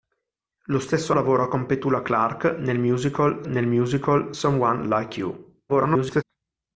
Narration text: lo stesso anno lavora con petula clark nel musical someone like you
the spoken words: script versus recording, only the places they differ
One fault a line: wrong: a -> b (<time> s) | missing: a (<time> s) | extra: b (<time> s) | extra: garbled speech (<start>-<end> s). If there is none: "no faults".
missing: anno (1.1 s)
extra: nel musical (3.5 s)
extra: garbled speech (5.7-6.2 s)